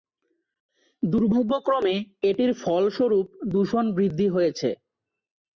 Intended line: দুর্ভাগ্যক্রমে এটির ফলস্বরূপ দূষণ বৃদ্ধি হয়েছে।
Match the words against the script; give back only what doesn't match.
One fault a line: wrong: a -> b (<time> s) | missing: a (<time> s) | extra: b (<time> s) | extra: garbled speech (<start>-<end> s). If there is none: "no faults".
no faults